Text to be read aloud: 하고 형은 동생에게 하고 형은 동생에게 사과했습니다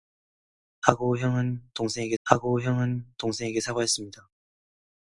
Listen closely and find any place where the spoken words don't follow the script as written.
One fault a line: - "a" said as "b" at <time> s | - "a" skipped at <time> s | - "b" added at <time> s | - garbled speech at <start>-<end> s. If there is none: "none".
none